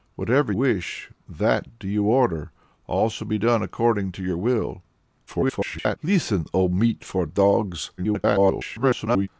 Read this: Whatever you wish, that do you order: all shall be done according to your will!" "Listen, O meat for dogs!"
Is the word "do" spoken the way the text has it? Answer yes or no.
yes